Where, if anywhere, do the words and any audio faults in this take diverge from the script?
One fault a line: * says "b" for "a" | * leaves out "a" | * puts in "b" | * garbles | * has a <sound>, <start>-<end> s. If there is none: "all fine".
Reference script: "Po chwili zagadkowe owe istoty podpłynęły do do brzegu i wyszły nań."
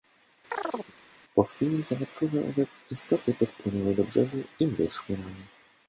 * has a chirp, 0.5-0.9 s
* leaves out "do"